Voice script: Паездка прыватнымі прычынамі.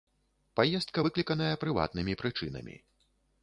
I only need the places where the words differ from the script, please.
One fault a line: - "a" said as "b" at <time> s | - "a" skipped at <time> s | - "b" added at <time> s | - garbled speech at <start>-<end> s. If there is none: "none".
- "выкліканая" added at 1.1 s